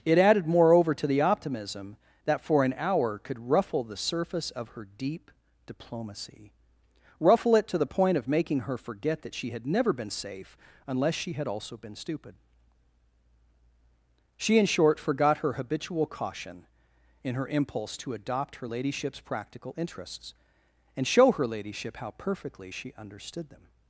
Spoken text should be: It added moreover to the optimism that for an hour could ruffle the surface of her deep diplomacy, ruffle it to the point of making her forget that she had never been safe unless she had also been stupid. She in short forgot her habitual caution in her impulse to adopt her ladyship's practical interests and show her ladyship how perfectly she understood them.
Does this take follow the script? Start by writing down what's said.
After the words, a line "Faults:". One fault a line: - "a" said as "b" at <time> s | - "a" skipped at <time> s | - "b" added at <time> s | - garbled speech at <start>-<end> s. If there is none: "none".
It added moreover to the optimism that for an hour could ruffle the surface of her deep diplomacy, ruffle it to the point of making her forget that she had never been safe unless she had also been stupid. She in short forgot her habitual caution in her impulse to adopt her ladyship's practical interests and show her ladyship how perfectly she understood them.
Faults:
none